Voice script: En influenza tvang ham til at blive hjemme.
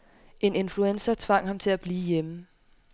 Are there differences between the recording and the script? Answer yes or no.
no